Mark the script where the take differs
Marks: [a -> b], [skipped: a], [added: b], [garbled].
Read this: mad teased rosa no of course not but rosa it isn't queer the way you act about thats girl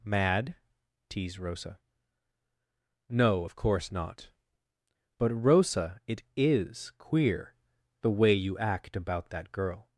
mad teased rosa no of course not but rosa it [isn't -> is] queer the way you act about [thats -> that] girl